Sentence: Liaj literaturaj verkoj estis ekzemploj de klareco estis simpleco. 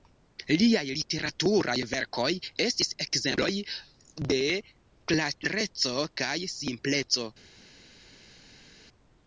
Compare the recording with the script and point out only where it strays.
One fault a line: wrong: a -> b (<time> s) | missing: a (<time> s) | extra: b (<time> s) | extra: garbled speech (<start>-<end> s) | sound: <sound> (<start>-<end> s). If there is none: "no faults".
wrong: estis -> kaj (6.2 s)